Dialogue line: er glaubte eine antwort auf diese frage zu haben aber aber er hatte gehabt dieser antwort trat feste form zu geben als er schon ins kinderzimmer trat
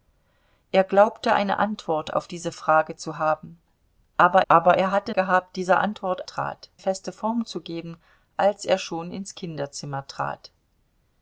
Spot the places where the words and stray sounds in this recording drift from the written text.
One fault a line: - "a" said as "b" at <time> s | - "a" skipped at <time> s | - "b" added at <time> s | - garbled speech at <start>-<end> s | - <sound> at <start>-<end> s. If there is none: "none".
none